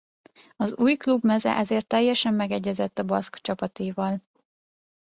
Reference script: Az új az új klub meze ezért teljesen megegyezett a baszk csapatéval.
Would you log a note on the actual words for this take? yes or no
yes